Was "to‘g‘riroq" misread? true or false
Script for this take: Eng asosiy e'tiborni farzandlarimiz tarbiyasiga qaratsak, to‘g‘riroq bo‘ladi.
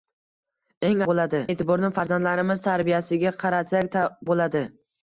true